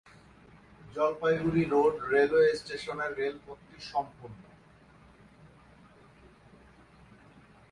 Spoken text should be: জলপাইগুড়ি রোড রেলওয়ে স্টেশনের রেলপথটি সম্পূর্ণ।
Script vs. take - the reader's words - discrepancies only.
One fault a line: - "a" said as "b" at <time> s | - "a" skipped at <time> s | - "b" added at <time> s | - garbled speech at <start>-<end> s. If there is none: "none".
none